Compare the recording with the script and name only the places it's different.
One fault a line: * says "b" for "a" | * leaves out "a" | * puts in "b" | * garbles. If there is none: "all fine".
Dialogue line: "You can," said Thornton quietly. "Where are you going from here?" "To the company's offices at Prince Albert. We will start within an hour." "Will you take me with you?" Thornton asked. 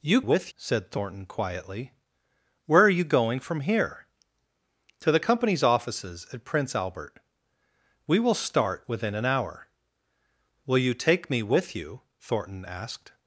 * says "with" for "can"